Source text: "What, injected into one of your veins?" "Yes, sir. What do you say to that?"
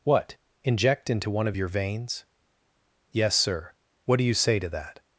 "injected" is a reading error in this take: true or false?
true